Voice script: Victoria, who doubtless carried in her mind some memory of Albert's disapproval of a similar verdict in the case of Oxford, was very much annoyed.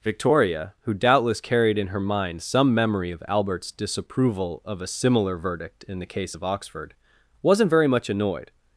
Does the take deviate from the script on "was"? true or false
true